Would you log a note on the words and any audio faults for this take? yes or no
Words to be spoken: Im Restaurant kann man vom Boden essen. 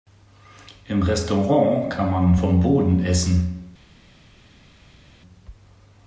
no